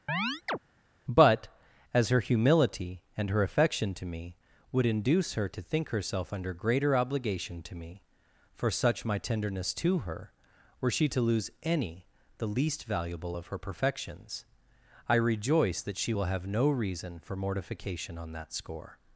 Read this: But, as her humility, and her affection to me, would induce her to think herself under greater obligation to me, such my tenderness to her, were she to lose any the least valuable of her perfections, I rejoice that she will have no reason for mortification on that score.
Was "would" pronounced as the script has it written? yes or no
yes